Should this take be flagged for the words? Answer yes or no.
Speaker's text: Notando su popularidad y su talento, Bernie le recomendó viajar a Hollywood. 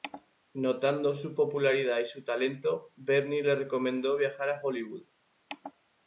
no